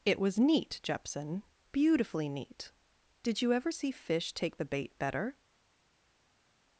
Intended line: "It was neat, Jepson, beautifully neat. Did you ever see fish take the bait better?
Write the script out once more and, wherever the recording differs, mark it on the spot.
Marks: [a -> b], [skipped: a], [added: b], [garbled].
"It was neat, Jepson, beautifully neat. Did you ever see fish take the bait better?